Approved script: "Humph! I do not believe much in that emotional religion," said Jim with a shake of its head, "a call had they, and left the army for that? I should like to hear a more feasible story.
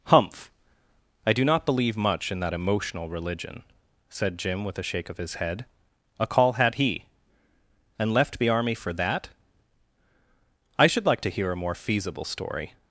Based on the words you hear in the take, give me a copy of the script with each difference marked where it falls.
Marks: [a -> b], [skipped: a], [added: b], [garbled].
"Humph! I do not believe much in that emotional religion," said Jim with a shake of [its -> his] head, "a call had [they, -> he] and left the army for that? I should like to hear a more feasible story.